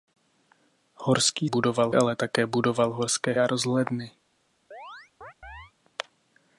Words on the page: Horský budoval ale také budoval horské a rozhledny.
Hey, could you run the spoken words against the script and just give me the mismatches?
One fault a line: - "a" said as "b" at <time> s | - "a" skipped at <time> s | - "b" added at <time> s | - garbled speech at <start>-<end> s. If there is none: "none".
none